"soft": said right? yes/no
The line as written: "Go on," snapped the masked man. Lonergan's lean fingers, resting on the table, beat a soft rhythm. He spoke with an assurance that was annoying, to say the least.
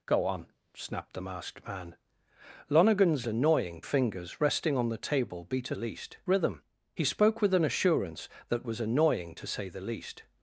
no